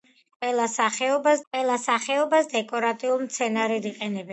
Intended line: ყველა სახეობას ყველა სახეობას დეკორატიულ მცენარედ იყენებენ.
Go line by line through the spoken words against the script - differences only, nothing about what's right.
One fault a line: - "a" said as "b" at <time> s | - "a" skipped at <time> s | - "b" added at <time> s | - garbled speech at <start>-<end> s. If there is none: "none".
none